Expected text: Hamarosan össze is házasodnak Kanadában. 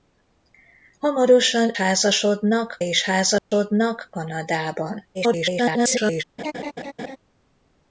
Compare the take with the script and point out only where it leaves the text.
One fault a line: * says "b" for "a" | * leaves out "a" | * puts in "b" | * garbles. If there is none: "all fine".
* says "házasodnak" for "össze"
* garbles